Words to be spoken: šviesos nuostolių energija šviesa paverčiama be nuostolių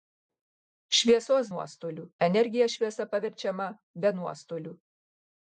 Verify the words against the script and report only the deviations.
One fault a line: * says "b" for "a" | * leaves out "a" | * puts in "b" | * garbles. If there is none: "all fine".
all fine